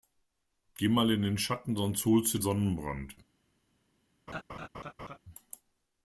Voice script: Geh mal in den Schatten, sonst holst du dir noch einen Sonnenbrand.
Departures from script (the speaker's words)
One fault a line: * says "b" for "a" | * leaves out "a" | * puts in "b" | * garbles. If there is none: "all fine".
* leaves out "dir noch einen"